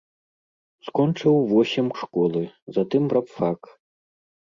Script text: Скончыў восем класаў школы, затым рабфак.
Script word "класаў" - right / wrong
wrong